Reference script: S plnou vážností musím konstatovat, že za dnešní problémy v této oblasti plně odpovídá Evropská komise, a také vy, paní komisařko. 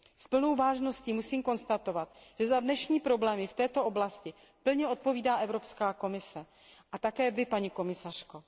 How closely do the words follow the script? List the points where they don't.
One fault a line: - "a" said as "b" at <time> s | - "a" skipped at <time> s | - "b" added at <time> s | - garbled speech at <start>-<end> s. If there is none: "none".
none